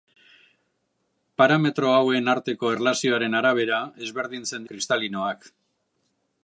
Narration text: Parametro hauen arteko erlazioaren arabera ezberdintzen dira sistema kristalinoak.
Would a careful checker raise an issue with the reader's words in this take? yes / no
yes